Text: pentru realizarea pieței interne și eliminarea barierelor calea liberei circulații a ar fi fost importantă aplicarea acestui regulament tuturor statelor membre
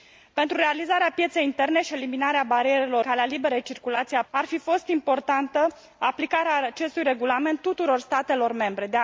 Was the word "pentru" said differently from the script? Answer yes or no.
no